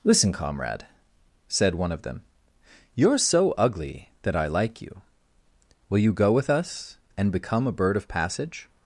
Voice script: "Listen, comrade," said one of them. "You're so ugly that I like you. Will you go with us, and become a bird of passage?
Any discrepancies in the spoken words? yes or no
no